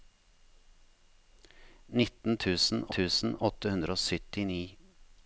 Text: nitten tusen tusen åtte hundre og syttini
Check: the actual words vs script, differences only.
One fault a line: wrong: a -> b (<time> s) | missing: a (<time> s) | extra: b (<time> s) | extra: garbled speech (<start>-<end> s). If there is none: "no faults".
no faults